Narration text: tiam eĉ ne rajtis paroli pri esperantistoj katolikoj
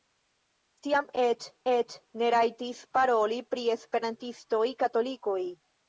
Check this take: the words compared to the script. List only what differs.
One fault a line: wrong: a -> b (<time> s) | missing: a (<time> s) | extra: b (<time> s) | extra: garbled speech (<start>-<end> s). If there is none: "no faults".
extra: eĉ (1.7 s)